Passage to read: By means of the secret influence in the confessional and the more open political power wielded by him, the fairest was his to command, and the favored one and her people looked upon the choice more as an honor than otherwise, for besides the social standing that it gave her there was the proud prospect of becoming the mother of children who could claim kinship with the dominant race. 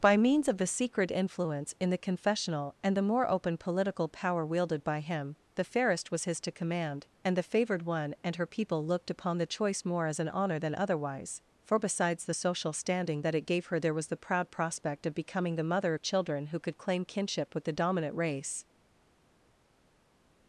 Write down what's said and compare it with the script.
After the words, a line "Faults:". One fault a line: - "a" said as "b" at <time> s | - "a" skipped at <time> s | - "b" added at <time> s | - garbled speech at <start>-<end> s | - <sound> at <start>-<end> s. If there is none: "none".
By means of the secret influence in the confessional and the more open political power wielded by him, the fairest was his to command, and the favored one and her people looked upon the choice more as an honor than otherwise, for besides the social standing that it gave her there was the proud prospect of becoming the mother of children who could claim kinship with the dominant race.
Faults:
none